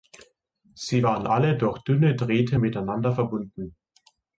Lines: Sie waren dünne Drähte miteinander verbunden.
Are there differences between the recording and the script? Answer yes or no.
yes